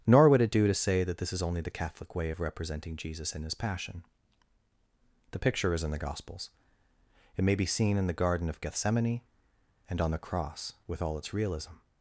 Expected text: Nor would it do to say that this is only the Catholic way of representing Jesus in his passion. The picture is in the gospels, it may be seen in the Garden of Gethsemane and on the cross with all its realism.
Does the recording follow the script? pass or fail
pass